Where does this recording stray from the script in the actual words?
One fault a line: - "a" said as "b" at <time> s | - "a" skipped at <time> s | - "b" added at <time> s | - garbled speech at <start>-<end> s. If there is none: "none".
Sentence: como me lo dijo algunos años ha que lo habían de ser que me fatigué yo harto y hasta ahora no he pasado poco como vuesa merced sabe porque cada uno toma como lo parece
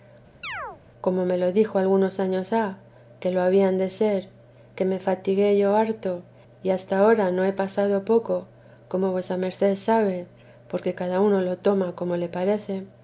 - "lo" added at 11.4 s
- "lo" said as "le" at 12.2 s